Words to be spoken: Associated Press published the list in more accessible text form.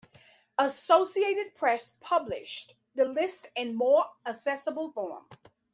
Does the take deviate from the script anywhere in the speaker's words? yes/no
yes